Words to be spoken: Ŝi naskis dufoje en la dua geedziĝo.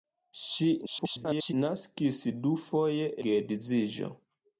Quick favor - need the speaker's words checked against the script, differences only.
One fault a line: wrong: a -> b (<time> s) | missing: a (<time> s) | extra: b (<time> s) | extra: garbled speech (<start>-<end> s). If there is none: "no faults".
extra: garbled speech (0.9-1.5 s)
missing: en la dua (3.1 s)